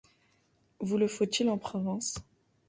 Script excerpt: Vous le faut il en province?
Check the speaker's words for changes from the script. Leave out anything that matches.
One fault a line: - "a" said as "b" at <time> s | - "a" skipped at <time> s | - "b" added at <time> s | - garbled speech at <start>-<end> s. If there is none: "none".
none